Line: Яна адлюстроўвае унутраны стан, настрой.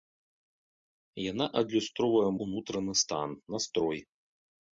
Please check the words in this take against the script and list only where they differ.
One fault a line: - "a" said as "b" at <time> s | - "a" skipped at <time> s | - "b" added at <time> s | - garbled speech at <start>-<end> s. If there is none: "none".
none